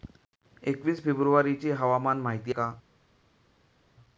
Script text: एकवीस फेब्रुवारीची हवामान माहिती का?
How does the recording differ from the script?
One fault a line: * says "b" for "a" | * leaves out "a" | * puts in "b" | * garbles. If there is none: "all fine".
all fine